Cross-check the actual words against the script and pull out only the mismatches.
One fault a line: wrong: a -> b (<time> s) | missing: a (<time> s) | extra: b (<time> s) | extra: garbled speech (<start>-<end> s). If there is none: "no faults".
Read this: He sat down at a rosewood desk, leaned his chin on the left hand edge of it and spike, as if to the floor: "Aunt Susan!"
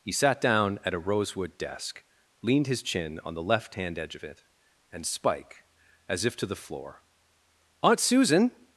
no faults